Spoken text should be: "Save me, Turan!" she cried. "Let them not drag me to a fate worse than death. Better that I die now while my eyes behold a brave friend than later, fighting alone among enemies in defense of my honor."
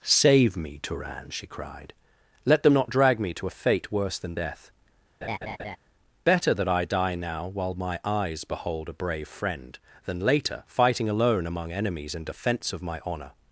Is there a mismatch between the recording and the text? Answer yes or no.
no